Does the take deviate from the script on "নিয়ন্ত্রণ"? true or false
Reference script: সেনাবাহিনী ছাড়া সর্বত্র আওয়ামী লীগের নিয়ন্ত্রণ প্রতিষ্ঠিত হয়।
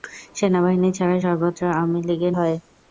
true